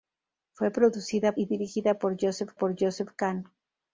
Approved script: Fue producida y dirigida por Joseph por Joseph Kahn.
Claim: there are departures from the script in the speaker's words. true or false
false